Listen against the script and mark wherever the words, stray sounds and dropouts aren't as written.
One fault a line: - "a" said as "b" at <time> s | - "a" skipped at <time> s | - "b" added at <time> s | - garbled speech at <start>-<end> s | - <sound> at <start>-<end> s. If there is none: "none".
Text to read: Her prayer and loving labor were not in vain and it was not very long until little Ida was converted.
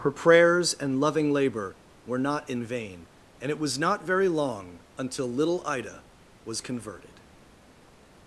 - "prayer" said as "prayers" at 0.1 s